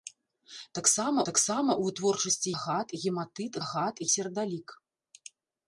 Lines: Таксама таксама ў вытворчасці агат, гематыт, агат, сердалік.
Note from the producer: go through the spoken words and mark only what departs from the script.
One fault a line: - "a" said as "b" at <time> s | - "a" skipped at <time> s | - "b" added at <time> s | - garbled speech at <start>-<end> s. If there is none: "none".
none